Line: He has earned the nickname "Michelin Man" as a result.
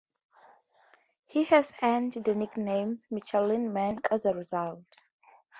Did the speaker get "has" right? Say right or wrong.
right